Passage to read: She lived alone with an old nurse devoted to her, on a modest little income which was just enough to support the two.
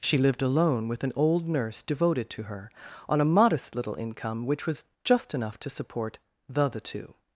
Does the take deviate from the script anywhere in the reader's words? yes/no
yes